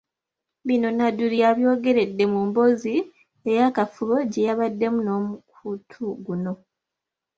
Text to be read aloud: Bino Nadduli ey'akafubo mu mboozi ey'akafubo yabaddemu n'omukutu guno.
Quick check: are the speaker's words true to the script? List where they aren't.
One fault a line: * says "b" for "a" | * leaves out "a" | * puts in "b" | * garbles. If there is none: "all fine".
* says "yabyogeredde" for "ey'akafubo"
* puts in "gye"